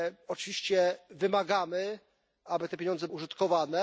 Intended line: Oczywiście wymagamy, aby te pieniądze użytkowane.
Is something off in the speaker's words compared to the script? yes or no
no